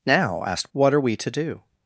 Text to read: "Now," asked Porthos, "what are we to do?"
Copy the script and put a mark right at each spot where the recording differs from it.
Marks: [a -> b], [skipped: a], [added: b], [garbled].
"Now," asked [skipped: Porthos,] "what are we to do?"